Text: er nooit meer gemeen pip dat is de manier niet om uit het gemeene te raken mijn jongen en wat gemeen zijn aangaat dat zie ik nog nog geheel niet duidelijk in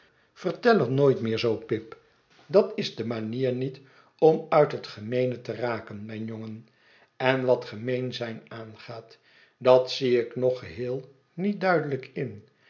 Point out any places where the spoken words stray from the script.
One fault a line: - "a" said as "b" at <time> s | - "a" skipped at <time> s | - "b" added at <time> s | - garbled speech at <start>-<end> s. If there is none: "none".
- "gemeen" said as "zoo" at 1.4 s
- "nog" skipped at 10.6 s